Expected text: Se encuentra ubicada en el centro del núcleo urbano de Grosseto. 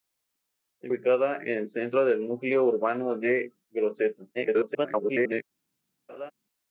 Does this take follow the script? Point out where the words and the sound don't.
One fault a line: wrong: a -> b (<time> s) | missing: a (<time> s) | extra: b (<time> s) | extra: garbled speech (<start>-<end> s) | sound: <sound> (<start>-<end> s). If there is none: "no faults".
missing: encuentra (0.9 s)
extra: garbled speech (4.3-5.4 s)
sound: laugh (6.1-6.3 s)